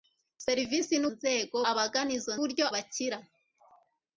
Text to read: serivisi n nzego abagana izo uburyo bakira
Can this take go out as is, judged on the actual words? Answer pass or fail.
pass